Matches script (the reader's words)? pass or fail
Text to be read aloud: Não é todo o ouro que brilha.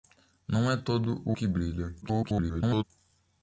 fail